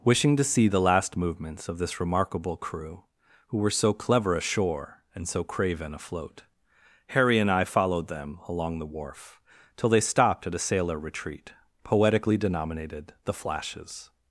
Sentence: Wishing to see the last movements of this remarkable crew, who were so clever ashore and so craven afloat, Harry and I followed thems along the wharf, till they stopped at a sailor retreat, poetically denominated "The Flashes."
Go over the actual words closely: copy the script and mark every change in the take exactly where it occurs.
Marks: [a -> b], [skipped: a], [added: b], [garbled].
Wishing to see the last movements of this remarkable crew, who were so clever ashore and so craven afloat, Harry and I followed [thems -> them] along the wharf, till they stopped at a sailor retreat, poetically denominated "The Flashes."